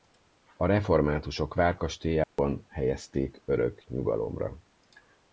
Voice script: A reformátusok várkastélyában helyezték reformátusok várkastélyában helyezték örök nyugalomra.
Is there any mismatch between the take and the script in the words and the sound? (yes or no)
yes